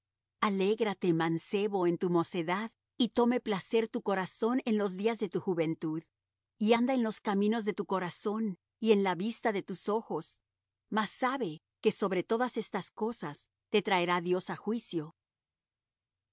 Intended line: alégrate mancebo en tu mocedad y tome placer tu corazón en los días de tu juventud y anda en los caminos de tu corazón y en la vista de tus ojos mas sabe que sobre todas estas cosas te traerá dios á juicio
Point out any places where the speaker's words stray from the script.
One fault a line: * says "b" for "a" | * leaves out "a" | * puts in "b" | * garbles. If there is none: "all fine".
all fine